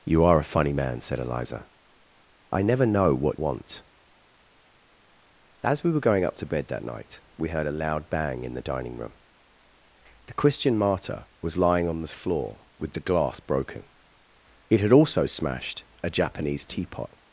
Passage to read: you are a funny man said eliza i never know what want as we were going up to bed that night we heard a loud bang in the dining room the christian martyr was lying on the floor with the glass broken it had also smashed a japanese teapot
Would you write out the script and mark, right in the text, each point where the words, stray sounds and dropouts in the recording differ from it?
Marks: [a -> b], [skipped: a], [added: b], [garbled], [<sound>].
you are a funny man said eliza i never know what want as we were going up to bed that night we heard a loud bang in the dining room the christian martyr was lying on the floor with the glass broken it had also smashed a japanese teapot